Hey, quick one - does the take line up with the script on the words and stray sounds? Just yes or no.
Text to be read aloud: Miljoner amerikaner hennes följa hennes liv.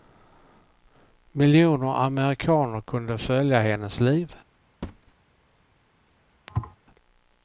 no